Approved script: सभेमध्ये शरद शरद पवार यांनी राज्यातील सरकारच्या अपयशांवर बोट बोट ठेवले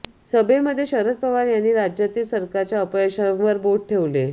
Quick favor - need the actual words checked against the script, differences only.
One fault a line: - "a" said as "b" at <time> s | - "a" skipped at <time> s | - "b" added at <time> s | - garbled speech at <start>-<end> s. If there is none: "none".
- "शरद" skipped at 1.2 s
- "बोट" skipped at 3.9 s